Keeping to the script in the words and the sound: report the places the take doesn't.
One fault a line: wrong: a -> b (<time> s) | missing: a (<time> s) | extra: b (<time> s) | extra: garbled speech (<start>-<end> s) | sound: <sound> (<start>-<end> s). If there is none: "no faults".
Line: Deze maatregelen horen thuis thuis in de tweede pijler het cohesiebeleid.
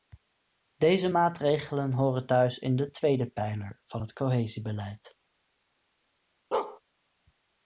missing: thuis (2.6 s)
extra: van (3.8 s)
sound: bark (6.5-6.8 s)